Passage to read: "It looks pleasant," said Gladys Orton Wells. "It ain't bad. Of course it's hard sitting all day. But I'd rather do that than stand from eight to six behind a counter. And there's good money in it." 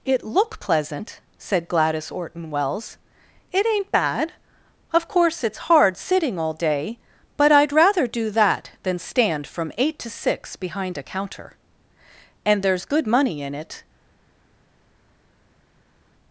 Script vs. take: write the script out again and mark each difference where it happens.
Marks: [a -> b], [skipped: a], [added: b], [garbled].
"It [looks -> look] pleasant," said Gladys Orton Wells. "It ain't bad. Of course it's hard sitting all day. But I'd rather do that than stand from eight to six behind a counter. And there's good money in it."